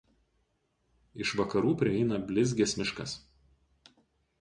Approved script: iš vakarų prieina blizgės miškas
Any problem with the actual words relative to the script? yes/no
no